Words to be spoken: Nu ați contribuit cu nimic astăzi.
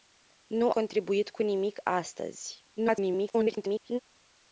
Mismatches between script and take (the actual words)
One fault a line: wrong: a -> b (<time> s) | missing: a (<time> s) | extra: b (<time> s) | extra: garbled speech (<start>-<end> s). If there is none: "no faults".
missing: ați (0.7 s)
extra: garbled speech (2.8-4.0 s)